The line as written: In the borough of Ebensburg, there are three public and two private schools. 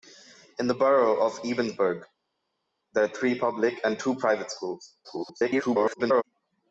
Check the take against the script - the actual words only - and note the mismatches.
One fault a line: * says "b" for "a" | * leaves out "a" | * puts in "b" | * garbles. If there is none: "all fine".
* garbles